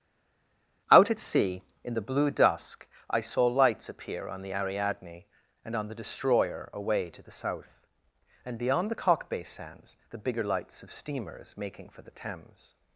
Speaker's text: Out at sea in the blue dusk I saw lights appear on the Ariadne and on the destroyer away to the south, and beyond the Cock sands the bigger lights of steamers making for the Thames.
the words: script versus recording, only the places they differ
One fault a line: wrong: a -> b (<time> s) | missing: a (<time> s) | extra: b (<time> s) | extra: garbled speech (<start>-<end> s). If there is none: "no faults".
extra: bay (9.3 s)